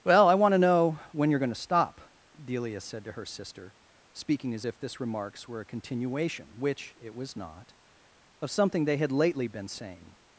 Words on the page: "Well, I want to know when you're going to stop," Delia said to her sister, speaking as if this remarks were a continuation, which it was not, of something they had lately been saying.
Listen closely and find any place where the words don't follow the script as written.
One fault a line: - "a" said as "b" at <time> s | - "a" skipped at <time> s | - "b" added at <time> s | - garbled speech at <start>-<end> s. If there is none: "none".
none